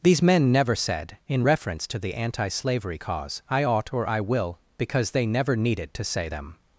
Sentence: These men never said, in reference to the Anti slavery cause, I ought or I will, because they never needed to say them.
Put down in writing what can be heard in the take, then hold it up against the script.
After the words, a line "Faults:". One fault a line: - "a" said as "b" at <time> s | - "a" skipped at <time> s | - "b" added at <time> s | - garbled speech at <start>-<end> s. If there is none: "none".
These men never said, in reference to the Anti slavery cause, I ought or I will, because they never needed to say them.
Faults:
none